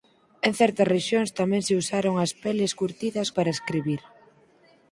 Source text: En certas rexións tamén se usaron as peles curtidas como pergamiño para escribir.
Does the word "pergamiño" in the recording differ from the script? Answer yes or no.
yes